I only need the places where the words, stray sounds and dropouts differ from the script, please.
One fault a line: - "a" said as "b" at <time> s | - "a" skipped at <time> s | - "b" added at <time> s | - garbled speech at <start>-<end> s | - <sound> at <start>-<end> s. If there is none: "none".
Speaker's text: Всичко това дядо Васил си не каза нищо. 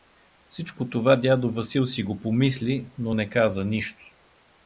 - "го помисли но" added at 2.0 s